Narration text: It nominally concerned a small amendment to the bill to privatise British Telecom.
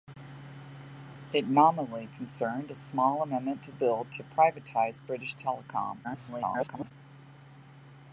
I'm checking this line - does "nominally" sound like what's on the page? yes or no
yes